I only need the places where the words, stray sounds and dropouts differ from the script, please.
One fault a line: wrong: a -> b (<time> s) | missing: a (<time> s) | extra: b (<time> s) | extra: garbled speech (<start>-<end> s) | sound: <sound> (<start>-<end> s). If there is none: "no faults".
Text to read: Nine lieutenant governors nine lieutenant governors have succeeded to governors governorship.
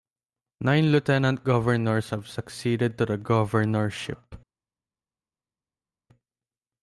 missing: nine lieutenant governors (2.1 s)
wrong: governors -> the (3.1 s)